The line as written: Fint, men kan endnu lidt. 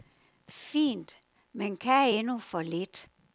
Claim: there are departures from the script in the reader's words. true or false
true